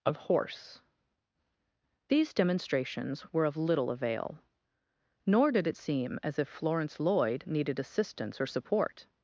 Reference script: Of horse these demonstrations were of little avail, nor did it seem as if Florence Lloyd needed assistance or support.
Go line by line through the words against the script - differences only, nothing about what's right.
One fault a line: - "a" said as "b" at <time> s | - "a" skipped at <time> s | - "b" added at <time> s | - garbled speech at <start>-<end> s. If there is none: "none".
none